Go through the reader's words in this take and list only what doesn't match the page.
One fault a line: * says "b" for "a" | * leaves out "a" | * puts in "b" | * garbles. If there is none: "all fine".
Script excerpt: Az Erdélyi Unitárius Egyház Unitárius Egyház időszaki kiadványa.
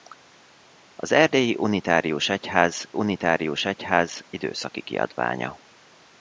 all fine